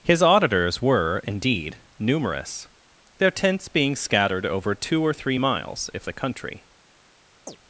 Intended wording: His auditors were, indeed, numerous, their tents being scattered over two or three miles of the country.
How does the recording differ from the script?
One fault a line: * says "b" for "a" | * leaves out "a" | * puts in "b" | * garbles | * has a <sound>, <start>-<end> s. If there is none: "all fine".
* says "if" for "of"
* has a chirp, 7.5-7.6 s